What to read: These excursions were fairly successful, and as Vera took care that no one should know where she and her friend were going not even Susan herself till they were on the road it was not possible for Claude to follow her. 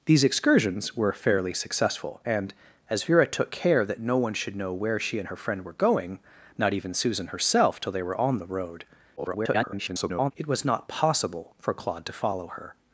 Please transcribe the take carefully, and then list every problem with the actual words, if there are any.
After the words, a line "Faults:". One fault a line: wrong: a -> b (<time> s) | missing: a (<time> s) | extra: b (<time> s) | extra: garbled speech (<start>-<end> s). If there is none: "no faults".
These excursions were fairly successful, and as Vera took care that no one should know where she and her friend were going not even Susan herself till they were on the road [garbled] it was not possible for Claude to follow her.
Faults:
extra: garbled speech (9.2-10.3 s)